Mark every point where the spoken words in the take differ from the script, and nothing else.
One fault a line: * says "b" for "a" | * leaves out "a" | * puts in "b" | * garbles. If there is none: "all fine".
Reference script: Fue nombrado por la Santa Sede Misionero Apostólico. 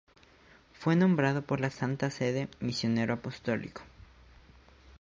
all fine